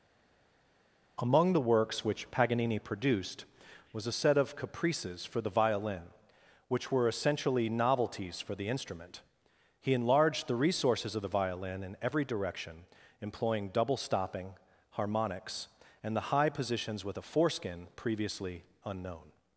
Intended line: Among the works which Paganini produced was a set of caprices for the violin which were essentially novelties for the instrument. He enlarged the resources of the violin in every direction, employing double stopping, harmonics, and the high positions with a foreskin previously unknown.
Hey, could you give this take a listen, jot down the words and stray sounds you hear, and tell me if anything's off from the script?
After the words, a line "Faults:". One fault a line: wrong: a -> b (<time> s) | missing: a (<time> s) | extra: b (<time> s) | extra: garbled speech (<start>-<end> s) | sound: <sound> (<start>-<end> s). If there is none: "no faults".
Among the works which Paganini produced was a set of caprices for the violin which were essentially novelties for the instrument. He enlarged the resources of the violin in every direction, employing double stopping, harmonics, and the high positions with a foreskin previously unknown.
Faults:
no faults